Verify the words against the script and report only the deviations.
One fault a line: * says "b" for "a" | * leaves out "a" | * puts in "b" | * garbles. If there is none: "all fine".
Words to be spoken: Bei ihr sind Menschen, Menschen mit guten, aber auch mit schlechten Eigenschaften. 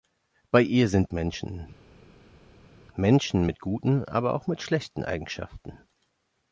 all fine